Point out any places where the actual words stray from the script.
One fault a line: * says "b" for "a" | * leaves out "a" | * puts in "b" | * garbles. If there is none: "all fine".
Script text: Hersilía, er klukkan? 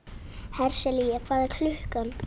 * puts in "hvað"